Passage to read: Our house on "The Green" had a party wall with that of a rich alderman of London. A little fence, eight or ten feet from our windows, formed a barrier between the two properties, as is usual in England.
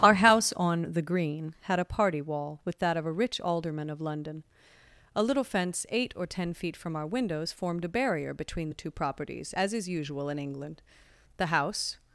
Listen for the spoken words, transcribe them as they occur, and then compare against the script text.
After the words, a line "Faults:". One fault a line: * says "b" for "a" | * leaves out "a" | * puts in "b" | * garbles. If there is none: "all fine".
Our house on "The Green" had a party wall with that of a rich alderman of London. A little fence, eight or ten feet from our windows, formed a barrier between the two properties, as is usual in England. The house
Faults:
* puts in "The house"